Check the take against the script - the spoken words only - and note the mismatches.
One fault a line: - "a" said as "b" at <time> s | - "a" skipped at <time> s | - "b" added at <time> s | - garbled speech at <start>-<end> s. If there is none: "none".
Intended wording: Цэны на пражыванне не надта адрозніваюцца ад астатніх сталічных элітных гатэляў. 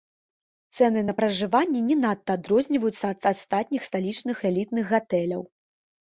none